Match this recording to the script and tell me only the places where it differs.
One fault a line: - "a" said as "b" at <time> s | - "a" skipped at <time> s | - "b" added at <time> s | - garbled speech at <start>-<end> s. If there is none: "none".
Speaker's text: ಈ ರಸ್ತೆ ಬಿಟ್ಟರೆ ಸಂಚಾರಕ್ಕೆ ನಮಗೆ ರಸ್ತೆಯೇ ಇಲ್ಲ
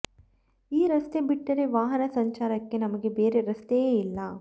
- "ವಾಹನ" added at 1.7 s
- "ಬೇರೆ" added at 3.1 s